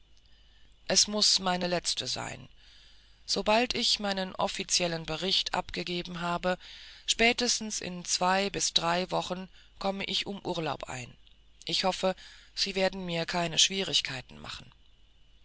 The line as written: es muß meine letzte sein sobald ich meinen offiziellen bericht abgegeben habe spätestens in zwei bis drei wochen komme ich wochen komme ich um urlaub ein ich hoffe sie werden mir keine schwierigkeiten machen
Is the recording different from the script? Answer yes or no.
yes